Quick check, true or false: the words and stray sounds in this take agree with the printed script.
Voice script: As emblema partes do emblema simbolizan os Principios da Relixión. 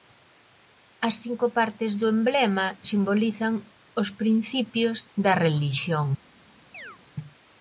false